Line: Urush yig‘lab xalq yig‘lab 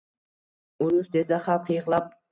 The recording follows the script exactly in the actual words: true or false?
false